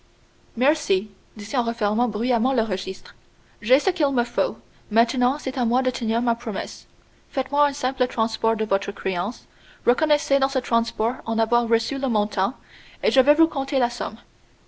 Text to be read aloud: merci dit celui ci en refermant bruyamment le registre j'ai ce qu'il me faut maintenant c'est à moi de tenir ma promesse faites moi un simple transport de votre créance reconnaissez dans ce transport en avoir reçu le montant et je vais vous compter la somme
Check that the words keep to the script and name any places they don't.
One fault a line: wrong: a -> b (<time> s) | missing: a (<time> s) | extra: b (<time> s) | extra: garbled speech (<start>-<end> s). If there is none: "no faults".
missing: celui (1.4 s)